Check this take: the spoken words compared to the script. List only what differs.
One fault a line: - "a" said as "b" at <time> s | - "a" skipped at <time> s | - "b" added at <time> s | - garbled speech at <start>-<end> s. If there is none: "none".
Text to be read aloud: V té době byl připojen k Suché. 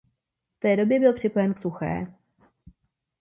none